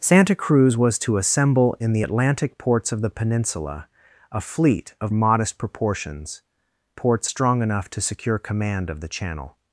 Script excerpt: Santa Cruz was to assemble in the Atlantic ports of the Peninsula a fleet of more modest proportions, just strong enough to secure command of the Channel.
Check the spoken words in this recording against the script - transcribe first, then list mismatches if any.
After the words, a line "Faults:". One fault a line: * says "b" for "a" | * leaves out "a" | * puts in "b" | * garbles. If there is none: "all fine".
Santa Cruz was to assemble in the Atlantic ports of the Peninsula a fleet of modest proportions, ports strong enough to secure command of the Channel.
Faults:
* leaves out "more"
* says "ports" for "just"